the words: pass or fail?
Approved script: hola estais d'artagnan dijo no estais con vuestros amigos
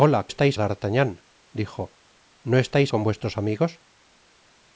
pass